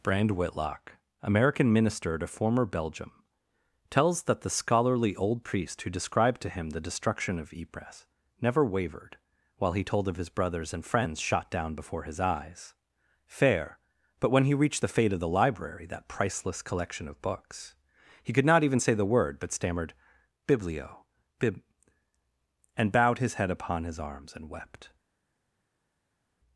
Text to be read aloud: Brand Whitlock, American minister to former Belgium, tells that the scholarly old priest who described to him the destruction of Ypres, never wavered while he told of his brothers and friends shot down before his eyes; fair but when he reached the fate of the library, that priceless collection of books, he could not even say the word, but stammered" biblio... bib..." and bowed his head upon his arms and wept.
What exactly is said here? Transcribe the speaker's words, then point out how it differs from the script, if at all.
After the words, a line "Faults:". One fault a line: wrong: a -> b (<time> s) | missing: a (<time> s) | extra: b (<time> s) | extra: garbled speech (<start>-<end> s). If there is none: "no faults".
Brand Whitlock, American minister to former Belgium, tells that the scholarly old priest who described to him the destruction of Ypres, never wavered while he told of his brothers and friends shot down before his eyes; fair but when he reached the fate of the library, that priceless collection of books, he could not even say the word, but stammered" biblio... bib..." and bowed his head upon his arms and wept.
Faults:
no faults